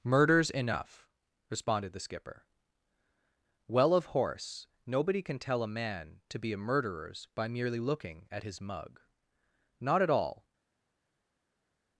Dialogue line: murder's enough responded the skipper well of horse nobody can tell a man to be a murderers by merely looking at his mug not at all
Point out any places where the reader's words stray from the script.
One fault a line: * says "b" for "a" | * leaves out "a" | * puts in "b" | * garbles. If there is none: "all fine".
all fine